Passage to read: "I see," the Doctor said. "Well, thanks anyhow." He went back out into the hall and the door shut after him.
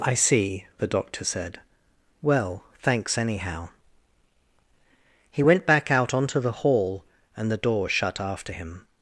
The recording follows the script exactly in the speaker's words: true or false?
false